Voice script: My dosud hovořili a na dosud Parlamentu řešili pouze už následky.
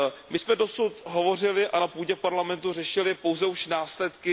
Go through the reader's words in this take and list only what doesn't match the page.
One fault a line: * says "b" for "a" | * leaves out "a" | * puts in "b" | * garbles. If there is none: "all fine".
* puts in "jsme"
* says "půdě" for "dosud"